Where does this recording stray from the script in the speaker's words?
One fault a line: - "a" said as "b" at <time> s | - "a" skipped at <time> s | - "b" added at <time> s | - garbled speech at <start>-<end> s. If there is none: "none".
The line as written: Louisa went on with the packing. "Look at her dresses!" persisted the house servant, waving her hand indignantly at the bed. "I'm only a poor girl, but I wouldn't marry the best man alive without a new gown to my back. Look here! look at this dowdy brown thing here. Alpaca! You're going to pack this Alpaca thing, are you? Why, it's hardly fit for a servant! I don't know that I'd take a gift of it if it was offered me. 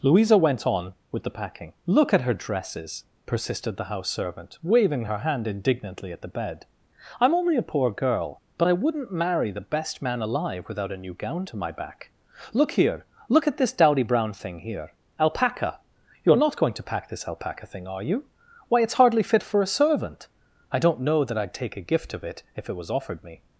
- "not" added at 16.4 s